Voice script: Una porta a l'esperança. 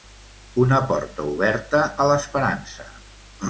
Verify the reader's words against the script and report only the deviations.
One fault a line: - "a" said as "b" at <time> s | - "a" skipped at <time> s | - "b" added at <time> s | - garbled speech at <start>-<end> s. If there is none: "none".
- "oberta" added at 1.4 s